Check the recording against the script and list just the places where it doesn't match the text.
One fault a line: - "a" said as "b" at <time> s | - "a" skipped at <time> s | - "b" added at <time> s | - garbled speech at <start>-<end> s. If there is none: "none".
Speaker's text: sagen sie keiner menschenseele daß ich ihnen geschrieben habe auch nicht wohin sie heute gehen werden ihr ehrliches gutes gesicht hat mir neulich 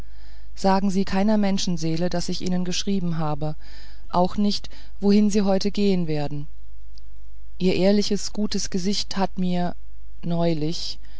none